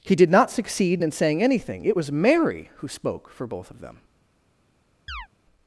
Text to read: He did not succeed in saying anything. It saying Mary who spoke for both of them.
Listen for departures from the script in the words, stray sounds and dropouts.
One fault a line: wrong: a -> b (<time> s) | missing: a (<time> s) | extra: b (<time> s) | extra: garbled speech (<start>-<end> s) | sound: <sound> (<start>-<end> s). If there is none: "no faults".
wrong: saying -> was (1.9 s)
sound: chirp (5.1-5.3 s)